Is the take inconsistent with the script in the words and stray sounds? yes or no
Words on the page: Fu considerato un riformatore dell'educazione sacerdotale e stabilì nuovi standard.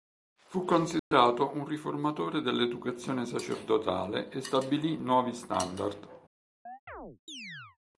yes